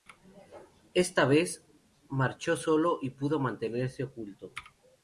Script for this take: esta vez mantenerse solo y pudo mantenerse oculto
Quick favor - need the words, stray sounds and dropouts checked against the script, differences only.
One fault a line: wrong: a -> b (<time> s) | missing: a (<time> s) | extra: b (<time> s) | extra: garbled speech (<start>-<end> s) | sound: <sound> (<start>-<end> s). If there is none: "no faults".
wrong: mantenerse -> marchó (2.1 s)